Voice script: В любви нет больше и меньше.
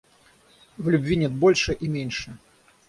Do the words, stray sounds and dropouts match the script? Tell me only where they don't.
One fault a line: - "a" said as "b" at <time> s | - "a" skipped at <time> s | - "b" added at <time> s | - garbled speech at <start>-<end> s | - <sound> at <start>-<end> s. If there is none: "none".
none